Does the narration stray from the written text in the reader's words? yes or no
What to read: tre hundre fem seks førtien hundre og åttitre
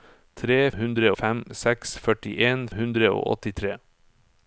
no